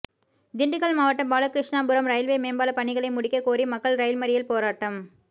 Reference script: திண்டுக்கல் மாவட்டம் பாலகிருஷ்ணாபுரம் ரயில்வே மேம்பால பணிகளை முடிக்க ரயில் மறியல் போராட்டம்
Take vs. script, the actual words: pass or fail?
fail